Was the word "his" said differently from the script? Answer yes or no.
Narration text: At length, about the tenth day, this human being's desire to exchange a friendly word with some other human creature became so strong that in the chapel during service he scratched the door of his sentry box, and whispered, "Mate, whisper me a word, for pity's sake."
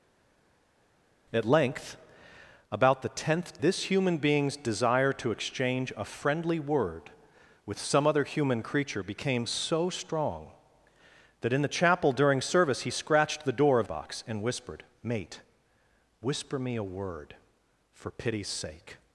yes